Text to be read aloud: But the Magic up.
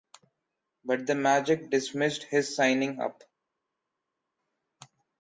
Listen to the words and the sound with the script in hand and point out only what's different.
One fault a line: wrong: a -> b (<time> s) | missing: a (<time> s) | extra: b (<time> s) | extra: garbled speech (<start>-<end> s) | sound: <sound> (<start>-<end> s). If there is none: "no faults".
extra: dismissed his signing (1.7 s)